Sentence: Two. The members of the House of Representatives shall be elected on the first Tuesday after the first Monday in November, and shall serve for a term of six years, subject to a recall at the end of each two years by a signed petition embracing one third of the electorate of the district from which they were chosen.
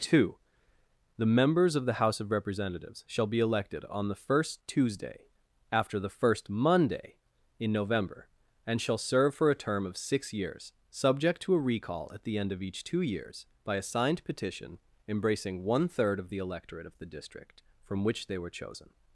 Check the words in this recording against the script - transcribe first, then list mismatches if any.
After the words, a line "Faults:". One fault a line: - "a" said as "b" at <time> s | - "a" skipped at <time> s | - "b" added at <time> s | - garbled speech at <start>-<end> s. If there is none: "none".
Two. The members of the House of Representatives shall be elected on the first Tuesday after the first Monday in November, and shall serve for a term of six years, subject to a recall at the end of each two years by a signed petition embracing one third of the electorate of the district from which they were chosen.
Faults:
none